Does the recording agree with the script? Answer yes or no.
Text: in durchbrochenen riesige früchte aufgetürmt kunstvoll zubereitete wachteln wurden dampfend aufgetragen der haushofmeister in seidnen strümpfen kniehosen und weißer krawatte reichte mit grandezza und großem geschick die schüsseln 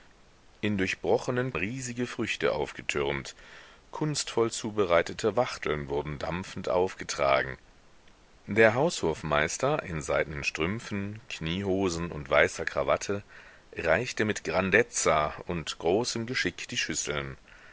yes